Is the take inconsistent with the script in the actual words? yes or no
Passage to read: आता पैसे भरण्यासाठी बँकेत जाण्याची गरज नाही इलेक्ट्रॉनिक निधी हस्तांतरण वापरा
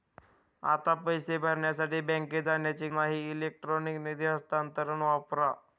yes